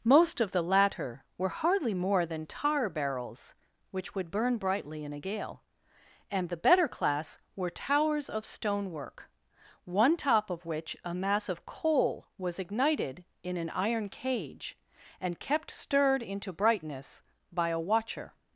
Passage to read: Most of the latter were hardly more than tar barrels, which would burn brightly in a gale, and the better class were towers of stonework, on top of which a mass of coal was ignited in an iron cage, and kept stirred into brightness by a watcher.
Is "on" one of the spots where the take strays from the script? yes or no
yes